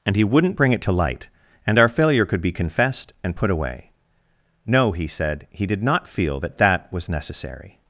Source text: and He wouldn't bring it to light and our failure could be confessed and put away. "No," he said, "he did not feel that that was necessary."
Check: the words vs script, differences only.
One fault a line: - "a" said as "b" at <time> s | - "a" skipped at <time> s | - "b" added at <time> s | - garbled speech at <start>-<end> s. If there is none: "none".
none